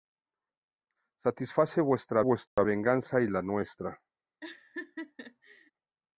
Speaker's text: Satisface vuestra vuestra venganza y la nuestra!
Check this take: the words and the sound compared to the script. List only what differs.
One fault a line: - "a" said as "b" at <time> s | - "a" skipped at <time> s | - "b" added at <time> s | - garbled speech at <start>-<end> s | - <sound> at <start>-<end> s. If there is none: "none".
- dropout at 2.5-2.6 s
- laugh at 4.4-5.7 s